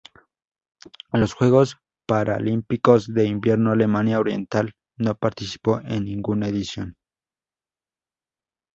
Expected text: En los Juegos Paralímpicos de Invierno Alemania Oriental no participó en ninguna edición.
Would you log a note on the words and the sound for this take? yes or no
no